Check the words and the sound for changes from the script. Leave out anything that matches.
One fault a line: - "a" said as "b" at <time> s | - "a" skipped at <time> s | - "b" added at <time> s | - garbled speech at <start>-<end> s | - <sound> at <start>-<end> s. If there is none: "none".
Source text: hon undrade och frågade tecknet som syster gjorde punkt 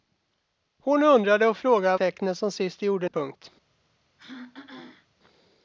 - throat clearing at 4.2-5.1 s